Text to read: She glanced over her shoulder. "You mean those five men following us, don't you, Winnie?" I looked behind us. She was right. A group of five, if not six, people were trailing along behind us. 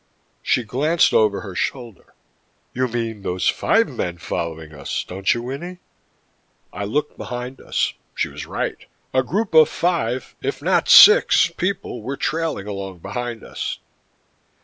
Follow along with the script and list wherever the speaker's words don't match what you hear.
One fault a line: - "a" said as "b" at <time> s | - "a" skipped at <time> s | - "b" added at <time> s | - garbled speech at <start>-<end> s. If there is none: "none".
none